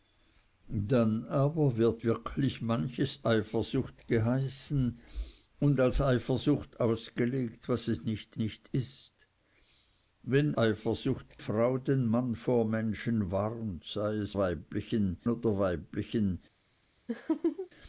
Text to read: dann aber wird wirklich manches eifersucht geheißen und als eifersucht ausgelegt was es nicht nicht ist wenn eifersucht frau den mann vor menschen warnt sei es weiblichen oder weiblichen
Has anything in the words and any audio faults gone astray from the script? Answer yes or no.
yes